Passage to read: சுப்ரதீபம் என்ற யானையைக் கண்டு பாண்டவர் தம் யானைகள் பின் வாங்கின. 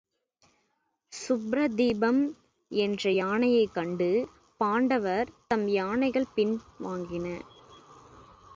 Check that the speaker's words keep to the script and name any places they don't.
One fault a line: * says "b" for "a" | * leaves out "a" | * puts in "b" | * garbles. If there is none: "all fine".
all fine